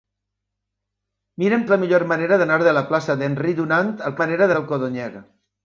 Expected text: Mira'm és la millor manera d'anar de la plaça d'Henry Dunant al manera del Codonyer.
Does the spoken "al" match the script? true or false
true